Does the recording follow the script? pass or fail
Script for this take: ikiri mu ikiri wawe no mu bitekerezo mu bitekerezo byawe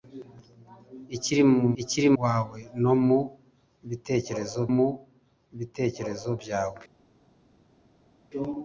pass